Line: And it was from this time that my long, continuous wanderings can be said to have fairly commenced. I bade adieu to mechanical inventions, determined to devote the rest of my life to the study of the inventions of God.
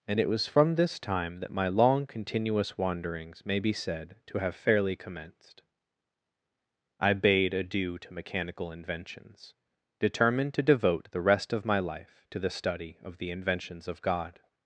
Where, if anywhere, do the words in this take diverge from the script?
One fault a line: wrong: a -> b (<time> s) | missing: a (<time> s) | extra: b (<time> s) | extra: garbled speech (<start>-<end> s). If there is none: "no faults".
wrong: can -> may (3.5 s)